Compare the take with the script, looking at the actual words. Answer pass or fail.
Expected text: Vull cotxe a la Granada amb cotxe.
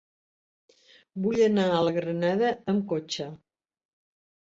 fail